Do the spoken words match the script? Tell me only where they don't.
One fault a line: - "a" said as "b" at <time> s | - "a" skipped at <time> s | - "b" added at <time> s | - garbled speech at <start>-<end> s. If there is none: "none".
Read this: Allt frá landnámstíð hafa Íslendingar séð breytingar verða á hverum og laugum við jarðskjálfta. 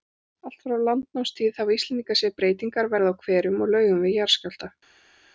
none